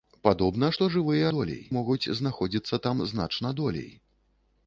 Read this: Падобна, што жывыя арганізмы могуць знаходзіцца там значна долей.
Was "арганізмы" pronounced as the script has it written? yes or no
no